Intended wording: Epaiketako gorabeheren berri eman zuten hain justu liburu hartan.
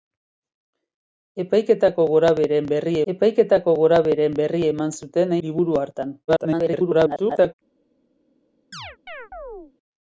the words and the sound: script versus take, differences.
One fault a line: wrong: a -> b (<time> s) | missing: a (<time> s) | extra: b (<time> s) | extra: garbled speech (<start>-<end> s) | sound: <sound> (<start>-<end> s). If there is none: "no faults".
extra: epaiketako gorabeheren berri (3.1 s)
missing: hain justu (5.4 s)
extra: garbled speech (6.3-7.5 s)
sound: chirp (8.7-9.7 s)